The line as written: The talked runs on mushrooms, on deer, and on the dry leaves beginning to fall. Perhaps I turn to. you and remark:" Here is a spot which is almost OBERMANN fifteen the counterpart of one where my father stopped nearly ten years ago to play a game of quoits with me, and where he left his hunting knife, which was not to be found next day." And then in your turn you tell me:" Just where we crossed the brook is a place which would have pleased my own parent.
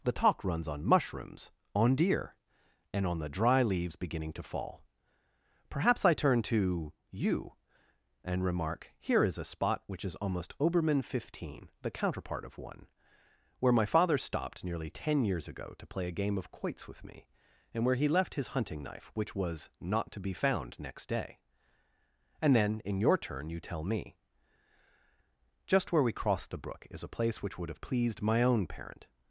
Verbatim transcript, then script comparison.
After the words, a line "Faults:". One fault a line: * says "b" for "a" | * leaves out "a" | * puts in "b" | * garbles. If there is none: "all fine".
The talk runs on mushrooms, on deer, and on the dry leaves beginning to fall. Perhaps I turn to. you and remark:" Here is a spot which is almost OBERMANN fifteen the counterpart of one where my father stopped nearly ten years ago to play a game of quoits with me, and where he left his hunting knife, which was not to be found next day." And then in your turn you tell me:" Just where we crossed the brook is a place which would have pleased my own parent.
Faults:
* says "talk" for "talked"